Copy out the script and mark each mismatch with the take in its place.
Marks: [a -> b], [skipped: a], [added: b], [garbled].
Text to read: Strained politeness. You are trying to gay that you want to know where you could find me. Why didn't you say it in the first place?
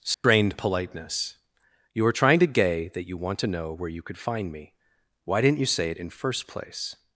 Strained politeness. You are trying to gay that you want to know where you could find me. Why didn't you say it in [skipped: the] first place?